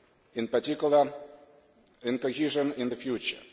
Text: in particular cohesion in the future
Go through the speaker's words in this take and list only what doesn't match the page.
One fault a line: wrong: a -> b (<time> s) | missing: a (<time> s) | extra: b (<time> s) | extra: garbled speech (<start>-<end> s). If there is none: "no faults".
extra: in (2.0 s)